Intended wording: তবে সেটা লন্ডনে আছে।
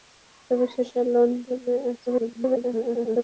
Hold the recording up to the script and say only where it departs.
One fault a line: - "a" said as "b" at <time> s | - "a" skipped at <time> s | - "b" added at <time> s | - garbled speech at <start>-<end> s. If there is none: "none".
- garbled speech at 2.1-3.2 s